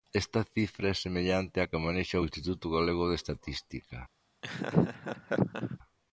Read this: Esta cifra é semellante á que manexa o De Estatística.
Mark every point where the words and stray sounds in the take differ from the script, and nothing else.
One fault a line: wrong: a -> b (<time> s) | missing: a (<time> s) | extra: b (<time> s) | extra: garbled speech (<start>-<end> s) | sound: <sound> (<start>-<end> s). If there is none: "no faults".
extra: Instituto Galego (2.3 s)
sound: laugh (4.4-5.8 s)